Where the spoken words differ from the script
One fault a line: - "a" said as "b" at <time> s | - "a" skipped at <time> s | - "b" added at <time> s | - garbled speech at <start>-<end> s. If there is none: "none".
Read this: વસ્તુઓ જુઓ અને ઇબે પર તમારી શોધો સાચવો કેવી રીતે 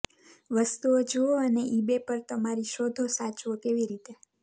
none